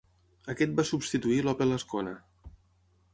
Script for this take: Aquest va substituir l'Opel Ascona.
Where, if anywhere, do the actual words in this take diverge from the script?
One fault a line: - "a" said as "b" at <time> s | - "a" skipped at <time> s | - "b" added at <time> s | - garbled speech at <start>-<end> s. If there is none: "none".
none